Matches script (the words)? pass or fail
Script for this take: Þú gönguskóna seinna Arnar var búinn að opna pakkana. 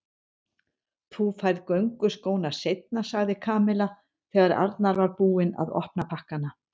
fail